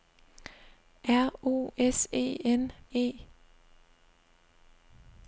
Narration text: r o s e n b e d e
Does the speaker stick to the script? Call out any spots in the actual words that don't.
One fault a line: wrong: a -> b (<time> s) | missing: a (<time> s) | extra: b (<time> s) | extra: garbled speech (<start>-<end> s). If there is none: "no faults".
missing: b e d (2.7 s)